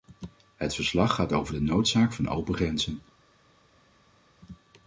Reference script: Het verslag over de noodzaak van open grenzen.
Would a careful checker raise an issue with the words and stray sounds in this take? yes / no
yes